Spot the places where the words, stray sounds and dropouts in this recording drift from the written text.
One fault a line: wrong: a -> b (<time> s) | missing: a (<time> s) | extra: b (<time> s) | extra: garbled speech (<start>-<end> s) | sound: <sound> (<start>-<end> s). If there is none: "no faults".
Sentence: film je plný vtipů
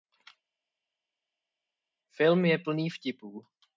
no faults